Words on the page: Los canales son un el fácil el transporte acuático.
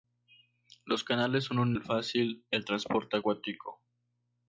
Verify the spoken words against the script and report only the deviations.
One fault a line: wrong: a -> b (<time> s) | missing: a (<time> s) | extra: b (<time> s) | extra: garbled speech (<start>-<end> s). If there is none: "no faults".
no faults